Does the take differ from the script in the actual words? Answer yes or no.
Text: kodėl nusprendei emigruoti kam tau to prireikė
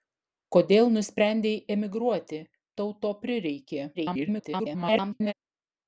yes